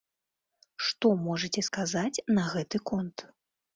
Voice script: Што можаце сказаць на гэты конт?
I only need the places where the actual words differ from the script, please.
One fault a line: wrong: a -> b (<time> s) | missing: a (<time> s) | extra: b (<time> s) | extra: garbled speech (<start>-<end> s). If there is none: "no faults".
no faults